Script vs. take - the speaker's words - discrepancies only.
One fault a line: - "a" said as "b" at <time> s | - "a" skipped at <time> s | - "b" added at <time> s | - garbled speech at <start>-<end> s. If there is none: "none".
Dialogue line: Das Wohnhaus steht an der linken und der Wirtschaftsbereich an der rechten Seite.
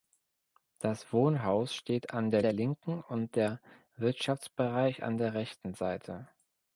- "der" added at 2.4 s